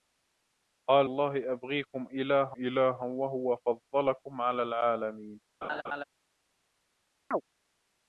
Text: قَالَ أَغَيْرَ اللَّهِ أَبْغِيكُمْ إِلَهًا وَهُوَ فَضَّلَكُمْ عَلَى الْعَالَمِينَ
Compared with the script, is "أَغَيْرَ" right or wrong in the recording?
wrong